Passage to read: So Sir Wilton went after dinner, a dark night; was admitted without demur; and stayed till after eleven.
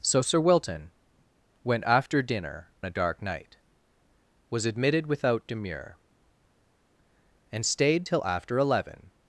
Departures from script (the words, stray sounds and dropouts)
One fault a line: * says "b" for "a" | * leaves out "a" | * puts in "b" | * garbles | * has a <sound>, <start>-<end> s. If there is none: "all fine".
all fine